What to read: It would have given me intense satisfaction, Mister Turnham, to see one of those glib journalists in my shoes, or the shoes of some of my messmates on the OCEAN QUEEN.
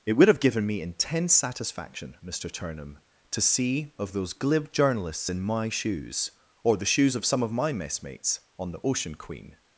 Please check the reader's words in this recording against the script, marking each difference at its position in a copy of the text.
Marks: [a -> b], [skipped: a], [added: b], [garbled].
It would have given me intense satisfaction, Mister Turnham, to see [skipped: one] of those glib journalists in my shoes, or the shoes of some of my messmates on the OCEAN QUEEN.